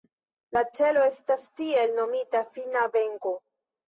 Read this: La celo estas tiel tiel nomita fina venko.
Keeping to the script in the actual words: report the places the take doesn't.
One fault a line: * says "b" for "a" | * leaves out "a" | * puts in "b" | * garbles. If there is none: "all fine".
* leaves out "tiel"